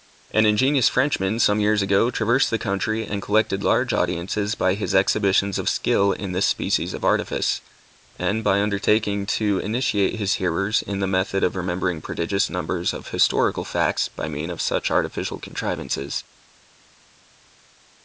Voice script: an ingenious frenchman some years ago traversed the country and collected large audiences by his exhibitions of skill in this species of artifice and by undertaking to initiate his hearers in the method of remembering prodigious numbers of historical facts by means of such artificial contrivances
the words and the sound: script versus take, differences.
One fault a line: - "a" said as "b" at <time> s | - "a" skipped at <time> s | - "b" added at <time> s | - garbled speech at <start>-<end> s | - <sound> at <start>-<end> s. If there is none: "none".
none